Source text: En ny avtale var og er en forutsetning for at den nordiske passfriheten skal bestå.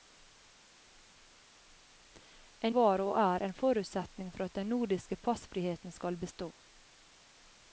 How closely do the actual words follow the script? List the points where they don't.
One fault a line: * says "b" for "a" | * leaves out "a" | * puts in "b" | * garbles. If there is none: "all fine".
* leaves out "ny avtale"